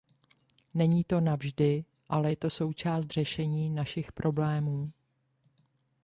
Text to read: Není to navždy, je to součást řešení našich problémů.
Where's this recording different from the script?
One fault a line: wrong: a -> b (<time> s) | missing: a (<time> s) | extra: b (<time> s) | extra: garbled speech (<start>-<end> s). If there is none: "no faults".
extra: ale (2.1 s)